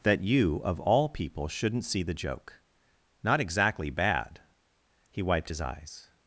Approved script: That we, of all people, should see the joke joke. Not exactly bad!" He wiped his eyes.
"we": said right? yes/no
no